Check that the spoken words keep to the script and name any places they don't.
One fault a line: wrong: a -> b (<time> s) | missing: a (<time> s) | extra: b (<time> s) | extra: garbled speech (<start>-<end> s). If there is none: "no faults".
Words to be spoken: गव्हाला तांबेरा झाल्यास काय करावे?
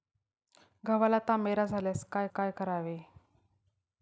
extra: काय (2.3 s)